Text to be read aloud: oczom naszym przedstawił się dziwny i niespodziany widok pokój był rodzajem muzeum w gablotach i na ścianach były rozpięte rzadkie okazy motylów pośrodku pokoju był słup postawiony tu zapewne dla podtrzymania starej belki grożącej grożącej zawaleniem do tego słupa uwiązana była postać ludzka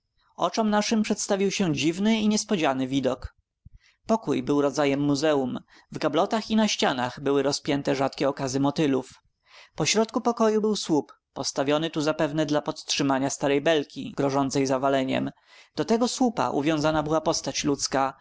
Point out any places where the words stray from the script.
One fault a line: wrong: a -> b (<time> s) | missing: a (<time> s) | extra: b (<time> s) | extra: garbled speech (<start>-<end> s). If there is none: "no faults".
missing: grożącej (14.7 s)